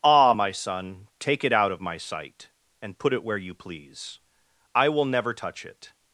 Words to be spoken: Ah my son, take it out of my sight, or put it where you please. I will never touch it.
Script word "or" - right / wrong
wrong